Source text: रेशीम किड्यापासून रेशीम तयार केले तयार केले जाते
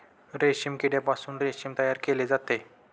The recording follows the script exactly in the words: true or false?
false